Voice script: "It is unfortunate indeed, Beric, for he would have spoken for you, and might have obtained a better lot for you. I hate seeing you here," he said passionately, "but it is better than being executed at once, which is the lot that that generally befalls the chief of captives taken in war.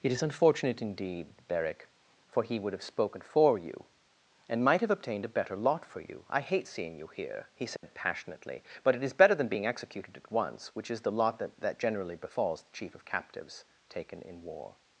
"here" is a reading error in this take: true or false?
false